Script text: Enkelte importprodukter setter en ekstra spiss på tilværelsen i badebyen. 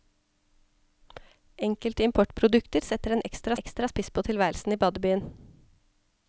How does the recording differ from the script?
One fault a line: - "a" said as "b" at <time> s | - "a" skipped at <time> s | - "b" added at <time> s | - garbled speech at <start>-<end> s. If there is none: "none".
- "ekstra" added at 3.6 s